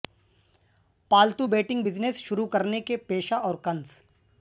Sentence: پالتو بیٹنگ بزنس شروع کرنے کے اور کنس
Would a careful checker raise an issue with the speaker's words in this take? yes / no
yes